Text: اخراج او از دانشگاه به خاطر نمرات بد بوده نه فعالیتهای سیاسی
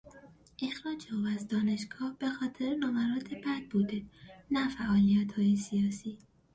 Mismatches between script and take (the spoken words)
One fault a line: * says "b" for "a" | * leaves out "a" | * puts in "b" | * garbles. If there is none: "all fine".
all fine